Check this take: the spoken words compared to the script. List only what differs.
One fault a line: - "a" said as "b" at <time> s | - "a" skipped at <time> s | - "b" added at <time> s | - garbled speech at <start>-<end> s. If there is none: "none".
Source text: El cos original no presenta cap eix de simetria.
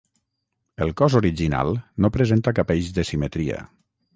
none